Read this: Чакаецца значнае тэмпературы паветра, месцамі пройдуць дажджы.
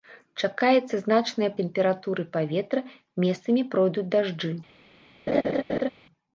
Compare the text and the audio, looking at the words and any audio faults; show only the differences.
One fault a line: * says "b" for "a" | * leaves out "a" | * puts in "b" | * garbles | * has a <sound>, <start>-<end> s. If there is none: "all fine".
* has a laugh, 5.3-5.9 s